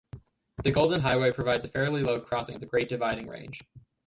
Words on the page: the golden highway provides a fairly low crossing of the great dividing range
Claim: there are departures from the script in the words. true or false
false